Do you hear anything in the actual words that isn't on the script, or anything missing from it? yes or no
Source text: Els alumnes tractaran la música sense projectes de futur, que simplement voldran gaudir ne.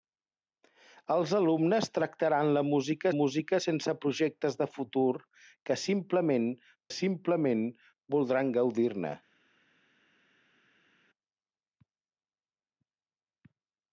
yes